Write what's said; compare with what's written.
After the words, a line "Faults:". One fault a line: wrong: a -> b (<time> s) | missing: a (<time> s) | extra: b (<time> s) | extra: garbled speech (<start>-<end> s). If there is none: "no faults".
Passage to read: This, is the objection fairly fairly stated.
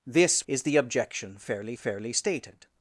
This, is the objection fairly fairly stated.
Faults:
no faults